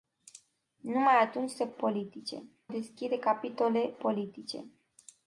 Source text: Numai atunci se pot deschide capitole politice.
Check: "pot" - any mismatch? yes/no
yes